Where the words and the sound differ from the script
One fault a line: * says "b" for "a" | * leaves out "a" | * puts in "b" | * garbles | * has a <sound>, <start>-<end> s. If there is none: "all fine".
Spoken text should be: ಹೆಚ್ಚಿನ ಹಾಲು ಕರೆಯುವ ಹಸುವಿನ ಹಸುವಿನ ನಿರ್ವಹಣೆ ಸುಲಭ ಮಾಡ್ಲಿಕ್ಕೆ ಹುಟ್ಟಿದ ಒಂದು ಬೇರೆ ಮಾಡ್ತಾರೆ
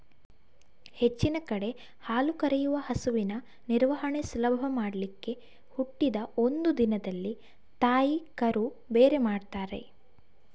* puts in "ಕಡೆ"
* leaves out "ಹಸುವಿನ"
* puts in "ದಿನದಲ್ಲಿ ತಾಯಿ ಕರು"